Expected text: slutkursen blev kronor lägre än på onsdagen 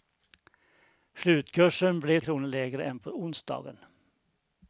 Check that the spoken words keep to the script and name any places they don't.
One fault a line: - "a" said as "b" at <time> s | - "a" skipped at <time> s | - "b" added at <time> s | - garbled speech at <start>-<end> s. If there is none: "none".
none